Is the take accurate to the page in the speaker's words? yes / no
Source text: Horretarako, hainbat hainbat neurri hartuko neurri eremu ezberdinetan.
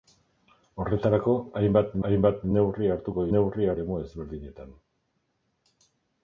yes